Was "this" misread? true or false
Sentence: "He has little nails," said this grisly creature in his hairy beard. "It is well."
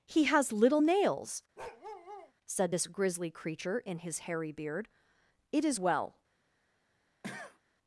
false